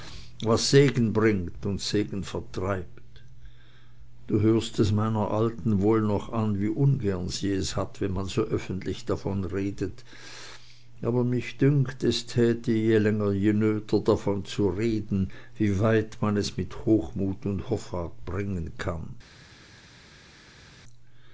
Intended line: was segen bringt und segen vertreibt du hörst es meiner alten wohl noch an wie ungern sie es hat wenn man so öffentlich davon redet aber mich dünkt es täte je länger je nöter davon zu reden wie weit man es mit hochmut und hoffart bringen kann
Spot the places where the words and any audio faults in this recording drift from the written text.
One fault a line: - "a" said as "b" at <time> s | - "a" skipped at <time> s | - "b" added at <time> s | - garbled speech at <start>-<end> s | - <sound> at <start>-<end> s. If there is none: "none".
none